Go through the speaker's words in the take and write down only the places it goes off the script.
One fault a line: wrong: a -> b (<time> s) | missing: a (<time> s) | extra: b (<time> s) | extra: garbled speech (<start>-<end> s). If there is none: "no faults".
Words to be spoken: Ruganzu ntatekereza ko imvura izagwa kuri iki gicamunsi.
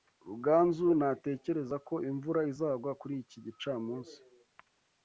no faults